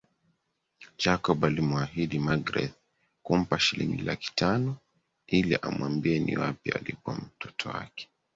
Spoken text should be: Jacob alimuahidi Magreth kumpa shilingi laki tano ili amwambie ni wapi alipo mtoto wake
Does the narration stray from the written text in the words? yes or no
no